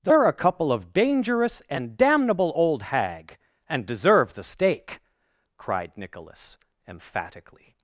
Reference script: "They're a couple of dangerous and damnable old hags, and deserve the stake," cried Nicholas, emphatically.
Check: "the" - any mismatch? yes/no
no